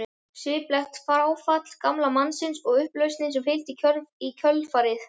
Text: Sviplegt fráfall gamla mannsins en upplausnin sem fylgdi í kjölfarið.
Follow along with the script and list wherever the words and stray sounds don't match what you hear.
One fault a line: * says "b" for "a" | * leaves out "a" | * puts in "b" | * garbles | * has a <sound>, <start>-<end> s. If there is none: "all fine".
* says "og" for "en"